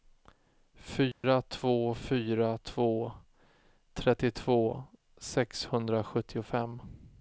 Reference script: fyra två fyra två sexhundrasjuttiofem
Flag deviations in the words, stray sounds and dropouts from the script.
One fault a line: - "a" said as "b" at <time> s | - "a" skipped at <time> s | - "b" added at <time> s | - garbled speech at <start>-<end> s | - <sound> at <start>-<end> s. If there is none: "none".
- dropout at 1.1-1.2 s
- "trettiotvå" added at 3.9 s